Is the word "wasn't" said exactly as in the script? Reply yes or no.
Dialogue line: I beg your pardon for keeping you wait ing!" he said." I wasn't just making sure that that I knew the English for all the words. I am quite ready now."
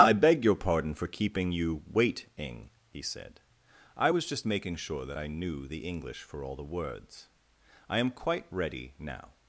no